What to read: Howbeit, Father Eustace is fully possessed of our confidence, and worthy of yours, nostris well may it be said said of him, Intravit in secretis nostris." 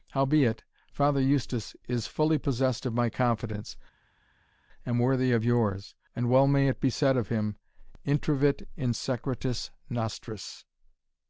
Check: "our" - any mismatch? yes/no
yes